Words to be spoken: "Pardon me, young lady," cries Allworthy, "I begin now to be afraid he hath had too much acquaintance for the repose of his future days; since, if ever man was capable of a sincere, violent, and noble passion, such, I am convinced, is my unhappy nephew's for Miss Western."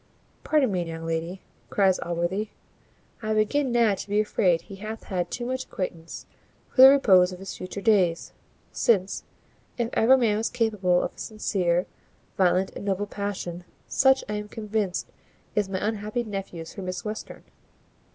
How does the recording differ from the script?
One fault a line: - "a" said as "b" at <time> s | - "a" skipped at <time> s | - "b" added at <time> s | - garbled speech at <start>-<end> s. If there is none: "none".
none